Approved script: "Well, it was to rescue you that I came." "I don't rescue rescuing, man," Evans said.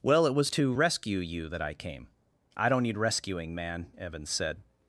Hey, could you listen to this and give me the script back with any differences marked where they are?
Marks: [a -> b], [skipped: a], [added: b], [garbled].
"Well, it was to rescue you that I came." "I don't [rescue -> need] rescuing, man," Evans said.